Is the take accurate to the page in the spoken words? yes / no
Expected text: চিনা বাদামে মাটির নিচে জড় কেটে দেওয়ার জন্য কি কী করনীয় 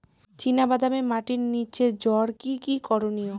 no